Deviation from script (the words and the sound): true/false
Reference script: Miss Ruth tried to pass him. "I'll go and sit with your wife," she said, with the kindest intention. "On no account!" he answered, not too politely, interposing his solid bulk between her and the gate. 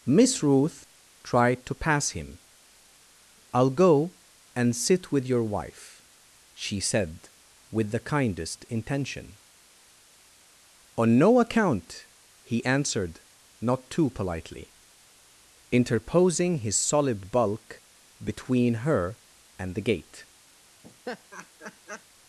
true